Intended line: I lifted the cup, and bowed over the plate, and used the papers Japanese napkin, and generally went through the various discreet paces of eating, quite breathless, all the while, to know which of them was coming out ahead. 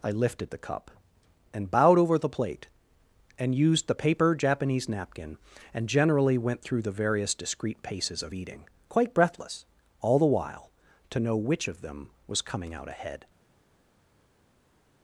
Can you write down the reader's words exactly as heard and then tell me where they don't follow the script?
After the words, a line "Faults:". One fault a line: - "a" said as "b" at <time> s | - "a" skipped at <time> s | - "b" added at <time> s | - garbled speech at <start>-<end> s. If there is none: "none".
I lifted the cup, and bowed over the plate, and used the paper Japanese napkin, and generally went through the various discreet paces of eating, quite breathless, all the while, to know which of them was coming out ahead.
Faults:
- "papers" said as "paper" at 3.9 s